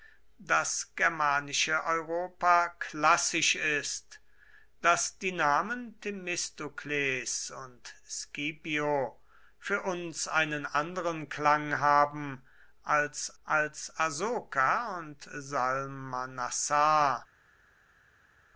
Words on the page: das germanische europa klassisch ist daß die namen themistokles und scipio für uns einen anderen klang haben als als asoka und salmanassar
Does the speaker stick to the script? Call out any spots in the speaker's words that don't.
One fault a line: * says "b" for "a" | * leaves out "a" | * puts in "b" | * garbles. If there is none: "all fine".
all fine